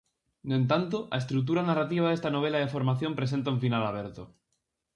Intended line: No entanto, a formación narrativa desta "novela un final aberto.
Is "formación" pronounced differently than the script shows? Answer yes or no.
yes